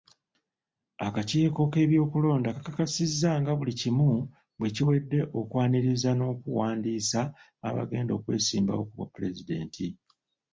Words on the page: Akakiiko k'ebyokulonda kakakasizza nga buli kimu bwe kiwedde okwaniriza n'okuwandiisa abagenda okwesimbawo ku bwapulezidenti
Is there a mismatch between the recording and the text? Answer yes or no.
no